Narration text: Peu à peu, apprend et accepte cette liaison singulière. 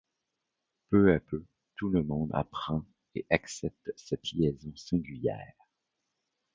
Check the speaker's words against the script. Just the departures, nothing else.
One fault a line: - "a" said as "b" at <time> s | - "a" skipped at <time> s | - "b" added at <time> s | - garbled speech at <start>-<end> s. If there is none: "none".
- "tout le monde" added at 1.8 s